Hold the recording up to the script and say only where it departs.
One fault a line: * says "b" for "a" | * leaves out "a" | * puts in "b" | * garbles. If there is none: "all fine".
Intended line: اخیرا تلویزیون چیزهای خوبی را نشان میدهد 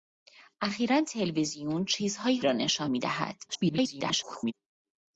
* leaves out "خوبی"
* garbles